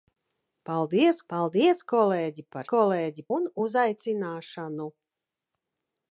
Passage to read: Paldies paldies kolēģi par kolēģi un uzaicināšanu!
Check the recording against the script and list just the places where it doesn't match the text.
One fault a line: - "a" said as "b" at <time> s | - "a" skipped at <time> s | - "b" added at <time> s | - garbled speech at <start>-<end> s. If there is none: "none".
none